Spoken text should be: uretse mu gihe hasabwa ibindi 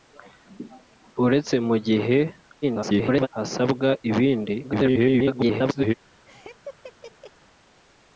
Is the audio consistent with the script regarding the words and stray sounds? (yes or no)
no